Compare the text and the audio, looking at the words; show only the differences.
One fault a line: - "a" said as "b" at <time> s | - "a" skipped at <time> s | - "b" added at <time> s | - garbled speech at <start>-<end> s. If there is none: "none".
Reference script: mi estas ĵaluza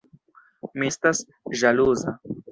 none